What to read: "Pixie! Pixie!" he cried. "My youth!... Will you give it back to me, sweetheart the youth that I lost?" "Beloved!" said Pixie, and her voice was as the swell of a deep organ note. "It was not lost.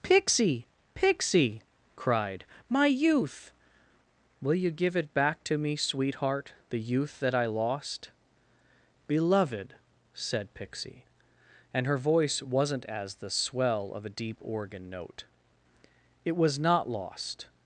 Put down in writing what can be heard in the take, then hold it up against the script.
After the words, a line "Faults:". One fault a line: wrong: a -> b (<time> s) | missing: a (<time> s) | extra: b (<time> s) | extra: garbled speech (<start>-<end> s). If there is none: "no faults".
"Pixie! Pixie!" cried. "My youth!... Will you give it back to me, sweetheart the youth that I lost?" "Beloved!" said Pixie, and her voice wasn't as the swell of a deep organ note. "It was not lost.
Faults:
missing: he (1.6 s)
wrong: was -> wasn't (12.4 s)